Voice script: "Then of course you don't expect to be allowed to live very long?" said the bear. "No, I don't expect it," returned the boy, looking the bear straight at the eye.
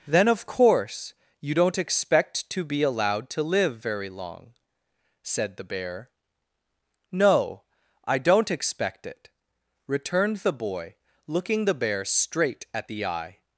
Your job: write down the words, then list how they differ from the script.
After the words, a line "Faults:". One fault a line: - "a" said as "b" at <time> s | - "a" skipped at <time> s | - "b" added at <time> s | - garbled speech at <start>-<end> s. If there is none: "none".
"Then of course you don't expect to be allowed to live very long?" said the bear. "No, I don't expect it," returned the boy, looking the bear straight at the eye.
Faults:
none